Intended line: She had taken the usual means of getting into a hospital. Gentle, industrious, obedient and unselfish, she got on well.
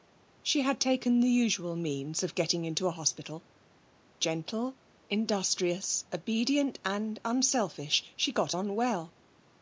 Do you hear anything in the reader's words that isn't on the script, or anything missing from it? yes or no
no